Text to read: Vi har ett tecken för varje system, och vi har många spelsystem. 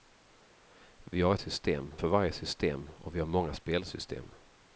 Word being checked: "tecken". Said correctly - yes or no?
no